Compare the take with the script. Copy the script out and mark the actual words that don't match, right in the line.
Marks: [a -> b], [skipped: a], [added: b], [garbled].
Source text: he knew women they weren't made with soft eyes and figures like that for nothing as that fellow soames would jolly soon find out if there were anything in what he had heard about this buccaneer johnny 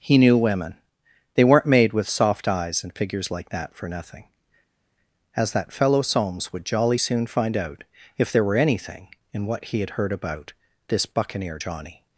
he knew women they weren't made with soft eyes and figures like that for nothing as that fellow soames would jolly soon find out if there were anything in what he had heard about this buccaneer johnny